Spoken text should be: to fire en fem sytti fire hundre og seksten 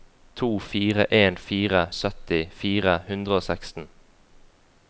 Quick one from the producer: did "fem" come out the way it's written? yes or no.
no